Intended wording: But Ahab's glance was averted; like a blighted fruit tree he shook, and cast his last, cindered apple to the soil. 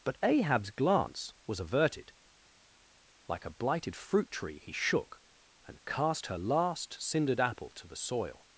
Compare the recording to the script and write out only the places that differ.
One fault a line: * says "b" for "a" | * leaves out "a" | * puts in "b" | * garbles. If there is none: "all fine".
* says "her" for "his"